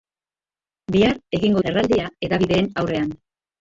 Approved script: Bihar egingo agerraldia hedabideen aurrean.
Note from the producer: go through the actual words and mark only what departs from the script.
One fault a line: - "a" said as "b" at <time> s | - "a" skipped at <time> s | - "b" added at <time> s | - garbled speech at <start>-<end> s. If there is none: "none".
none